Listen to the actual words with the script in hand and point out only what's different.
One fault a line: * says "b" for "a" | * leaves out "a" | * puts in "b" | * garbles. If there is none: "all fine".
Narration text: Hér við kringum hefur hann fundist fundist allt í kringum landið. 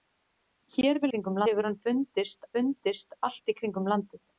all fine